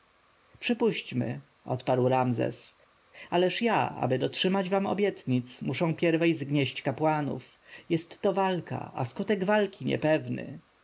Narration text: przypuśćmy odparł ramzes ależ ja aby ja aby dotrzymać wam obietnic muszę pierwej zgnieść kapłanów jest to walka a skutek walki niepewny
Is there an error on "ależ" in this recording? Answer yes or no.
no